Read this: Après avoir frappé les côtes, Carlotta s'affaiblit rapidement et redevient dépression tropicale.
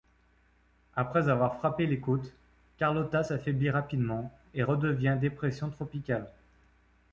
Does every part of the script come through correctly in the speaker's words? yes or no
yes